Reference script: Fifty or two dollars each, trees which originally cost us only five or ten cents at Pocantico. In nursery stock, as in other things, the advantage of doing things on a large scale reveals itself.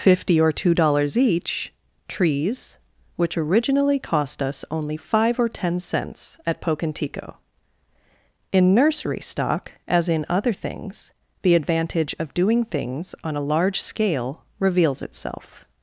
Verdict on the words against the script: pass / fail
pass